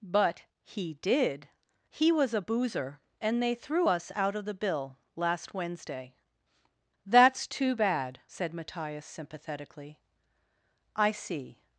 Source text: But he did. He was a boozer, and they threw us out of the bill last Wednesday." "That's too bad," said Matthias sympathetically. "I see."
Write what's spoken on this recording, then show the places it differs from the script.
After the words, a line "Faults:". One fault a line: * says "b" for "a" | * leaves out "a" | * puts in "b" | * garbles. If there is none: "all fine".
But he did. He was a boozer, and they threw us out of the bill last Wednesday." "That's too bad," said Matthias sympathetically. "I see."
Faults:
all fine